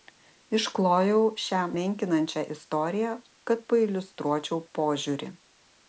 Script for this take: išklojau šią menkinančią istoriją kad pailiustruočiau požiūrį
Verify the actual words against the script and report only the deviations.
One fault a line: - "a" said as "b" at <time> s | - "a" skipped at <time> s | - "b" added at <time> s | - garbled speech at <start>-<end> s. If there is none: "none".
none